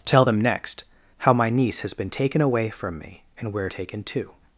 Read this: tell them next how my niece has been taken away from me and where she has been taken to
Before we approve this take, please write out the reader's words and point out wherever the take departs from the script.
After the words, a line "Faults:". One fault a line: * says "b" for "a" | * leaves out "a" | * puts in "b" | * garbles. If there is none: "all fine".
tell them next how my niece has been taken away from me and where taken to
Faults:
* leaves out "she has been"